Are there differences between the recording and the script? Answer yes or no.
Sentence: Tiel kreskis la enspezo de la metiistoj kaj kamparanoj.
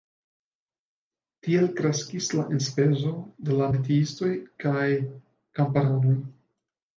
no